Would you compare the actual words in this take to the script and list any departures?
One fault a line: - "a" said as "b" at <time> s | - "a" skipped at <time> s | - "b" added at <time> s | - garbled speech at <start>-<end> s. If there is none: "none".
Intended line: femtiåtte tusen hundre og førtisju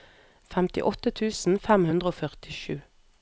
- "fem" added at 1.7 s